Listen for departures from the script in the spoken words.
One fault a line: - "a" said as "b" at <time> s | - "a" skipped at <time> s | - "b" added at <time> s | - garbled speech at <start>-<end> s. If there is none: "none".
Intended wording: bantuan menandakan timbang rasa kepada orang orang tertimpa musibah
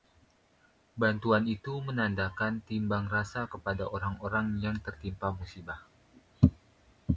- "itu" added at 1.4 s
- "yang" added at 4.6 s